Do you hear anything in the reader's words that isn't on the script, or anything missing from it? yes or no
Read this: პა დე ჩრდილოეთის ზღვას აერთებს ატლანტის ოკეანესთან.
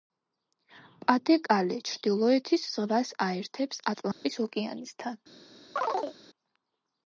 yes